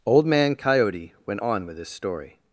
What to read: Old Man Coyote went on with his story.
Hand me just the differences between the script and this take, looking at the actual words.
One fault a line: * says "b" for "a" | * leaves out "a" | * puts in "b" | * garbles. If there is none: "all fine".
all fine